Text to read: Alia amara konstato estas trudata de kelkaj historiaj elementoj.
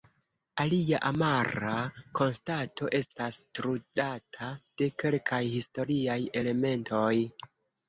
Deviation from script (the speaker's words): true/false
false